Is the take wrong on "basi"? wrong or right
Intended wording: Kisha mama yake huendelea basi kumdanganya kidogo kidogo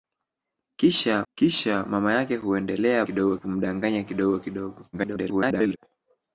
wrong